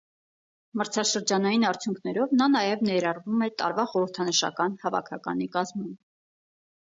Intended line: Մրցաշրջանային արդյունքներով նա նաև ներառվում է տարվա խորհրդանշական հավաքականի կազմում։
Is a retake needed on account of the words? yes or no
no